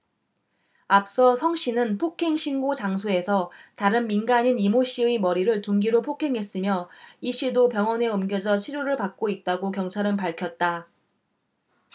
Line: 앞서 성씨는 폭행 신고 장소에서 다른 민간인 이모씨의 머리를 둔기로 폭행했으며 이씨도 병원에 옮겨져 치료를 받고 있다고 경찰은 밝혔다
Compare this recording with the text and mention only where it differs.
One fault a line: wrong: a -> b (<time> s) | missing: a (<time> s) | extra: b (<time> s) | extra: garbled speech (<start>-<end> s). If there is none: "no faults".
no faults